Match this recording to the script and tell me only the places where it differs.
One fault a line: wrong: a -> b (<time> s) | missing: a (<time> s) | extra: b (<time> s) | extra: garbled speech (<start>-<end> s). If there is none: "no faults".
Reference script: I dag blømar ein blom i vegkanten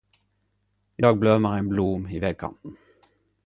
no faults